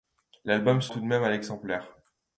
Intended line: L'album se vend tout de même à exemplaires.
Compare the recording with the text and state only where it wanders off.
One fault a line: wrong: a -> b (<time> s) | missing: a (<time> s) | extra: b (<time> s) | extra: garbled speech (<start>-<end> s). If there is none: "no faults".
missing: vend (0.9 s)